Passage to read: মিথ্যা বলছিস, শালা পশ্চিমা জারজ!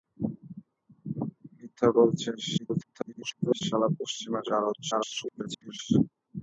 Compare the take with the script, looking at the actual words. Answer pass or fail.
fail